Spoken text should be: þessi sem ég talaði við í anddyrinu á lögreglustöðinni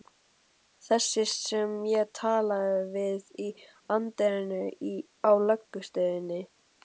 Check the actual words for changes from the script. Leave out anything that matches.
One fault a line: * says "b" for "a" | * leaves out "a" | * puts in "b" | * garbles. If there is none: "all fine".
all fine